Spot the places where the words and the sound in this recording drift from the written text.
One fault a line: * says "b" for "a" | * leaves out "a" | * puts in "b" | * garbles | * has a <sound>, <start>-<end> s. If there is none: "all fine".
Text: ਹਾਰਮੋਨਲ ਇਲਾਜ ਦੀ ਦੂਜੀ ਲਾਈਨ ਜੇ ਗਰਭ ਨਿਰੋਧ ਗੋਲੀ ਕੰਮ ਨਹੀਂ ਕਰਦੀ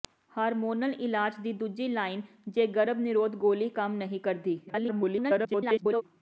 * garbles